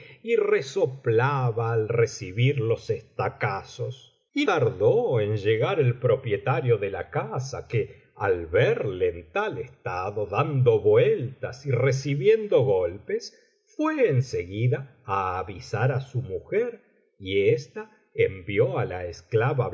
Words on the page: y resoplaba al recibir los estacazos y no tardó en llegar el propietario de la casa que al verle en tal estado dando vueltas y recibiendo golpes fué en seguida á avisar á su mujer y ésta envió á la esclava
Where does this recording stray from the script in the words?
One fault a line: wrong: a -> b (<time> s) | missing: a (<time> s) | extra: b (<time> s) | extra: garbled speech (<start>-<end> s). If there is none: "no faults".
missing: no (4.5 s)